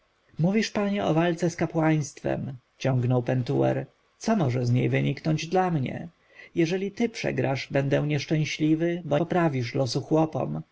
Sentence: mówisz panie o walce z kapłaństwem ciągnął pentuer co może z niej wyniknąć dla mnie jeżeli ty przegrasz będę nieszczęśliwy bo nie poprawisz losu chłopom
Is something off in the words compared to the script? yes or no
yes